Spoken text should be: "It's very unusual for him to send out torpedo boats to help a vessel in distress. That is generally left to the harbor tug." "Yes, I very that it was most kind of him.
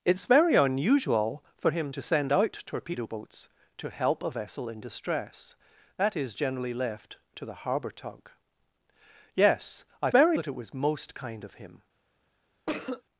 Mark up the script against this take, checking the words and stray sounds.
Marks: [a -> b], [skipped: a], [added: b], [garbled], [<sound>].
"It's very unusual for him to send out torpedo boats to help a vessel in distress. That is generally left to the harbor tug." "Yes, I very that it was most kind of him. [cough]